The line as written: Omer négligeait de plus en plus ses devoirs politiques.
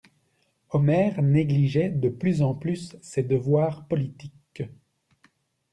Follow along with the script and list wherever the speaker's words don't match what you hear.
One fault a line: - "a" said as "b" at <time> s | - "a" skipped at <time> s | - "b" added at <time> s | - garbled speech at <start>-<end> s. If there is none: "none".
none